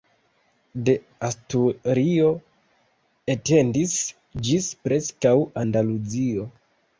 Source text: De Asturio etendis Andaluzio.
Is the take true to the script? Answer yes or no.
no